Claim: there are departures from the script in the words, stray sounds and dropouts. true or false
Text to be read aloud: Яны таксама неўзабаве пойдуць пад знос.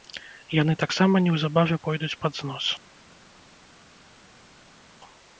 false